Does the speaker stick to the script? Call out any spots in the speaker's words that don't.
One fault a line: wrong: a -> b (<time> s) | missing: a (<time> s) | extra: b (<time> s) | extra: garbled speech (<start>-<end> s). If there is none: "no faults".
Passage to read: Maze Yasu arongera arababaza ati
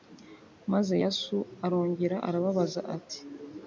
no faults